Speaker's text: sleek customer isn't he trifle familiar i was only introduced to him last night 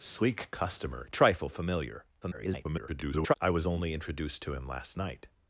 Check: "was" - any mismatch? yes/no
no